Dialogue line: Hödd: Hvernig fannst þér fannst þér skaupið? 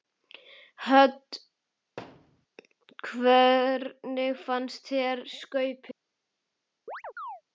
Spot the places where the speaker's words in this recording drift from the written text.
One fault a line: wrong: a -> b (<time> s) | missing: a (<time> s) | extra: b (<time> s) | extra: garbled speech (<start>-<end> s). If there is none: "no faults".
missing: fannst þér (5.3 s)